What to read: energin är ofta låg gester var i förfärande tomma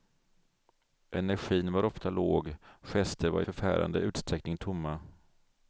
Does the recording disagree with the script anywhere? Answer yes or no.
yes